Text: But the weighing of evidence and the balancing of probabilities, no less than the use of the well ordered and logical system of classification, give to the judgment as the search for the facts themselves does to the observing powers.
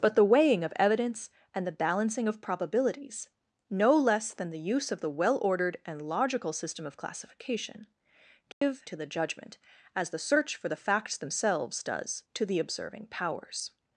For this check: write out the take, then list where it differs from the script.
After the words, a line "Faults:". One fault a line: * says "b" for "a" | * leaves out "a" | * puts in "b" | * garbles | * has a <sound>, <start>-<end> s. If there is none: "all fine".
But the weighing of evidence and the balancing of probabilities, no less than the use of the well ordered and logical system of classification, give to the judgment as the search for the facts themselves does to the observing powers.
Faults:
* has a dropout, 8.5-8.6 s